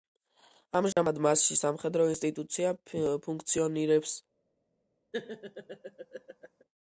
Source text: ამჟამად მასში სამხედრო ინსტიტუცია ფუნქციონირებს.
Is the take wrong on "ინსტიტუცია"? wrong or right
right